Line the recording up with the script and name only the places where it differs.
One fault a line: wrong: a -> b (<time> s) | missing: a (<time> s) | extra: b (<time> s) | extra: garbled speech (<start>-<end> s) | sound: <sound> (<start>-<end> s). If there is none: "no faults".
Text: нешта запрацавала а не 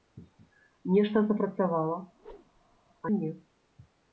sound: whoosh (2.1-2.8 s)